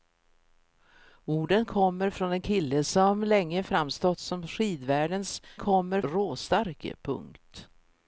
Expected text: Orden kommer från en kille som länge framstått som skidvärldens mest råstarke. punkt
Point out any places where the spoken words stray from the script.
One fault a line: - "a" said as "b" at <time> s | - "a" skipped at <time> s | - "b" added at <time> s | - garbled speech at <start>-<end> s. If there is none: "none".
- "mest" said as "kommer" at 5.6 s